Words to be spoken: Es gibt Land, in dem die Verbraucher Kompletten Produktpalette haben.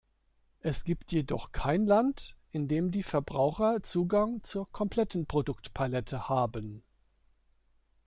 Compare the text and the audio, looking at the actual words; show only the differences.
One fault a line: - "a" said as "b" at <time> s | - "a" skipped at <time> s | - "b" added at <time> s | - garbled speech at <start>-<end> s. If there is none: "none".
- "jedoch kein" added at 1.1 s
- "Zugang zur" added at 3.8 s